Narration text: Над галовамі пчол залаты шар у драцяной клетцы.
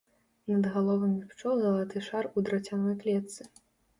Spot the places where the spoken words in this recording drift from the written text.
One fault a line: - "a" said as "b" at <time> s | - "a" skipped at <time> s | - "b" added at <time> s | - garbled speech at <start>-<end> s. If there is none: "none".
none